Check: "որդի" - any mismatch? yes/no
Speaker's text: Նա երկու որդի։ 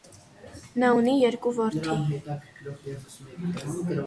no